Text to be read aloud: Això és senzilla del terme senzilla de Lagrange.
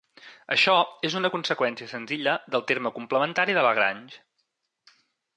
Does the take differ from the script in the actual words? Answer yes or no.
yes